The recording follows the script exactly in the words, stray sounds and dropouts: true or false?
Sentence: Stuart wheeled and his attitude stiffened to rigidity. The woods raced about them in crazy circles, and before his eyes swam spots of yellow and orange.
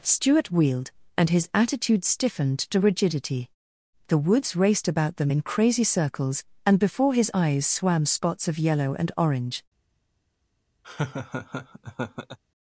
false